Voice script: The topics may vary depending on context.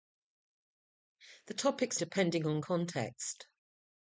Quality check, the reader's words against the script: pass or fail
fail